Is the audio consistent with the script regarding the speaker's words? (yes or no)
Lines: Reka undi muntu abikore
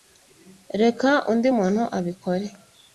yes